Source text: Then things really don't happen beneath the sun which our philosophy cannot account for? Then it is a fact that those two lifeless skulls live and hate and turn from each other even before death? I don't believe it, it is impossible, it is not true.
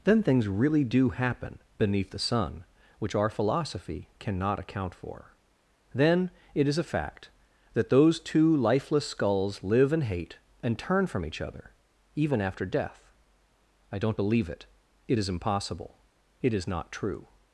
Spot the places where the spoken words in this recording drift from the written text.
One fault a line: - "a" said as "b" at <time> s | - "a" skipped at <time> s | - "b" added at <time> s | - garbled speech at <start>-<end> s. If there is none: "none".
- "don't" said as "do" at 0.8 s
- "before" said as "after" at 12.4 s